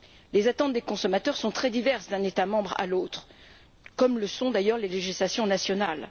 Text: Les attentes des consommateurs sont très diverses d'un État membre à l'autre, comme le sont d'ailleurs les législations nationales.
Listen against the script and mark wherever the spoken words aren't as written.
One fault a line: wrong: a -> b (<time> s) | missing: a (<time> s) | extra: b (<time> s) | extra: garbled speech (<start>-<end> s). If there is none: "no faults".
no faults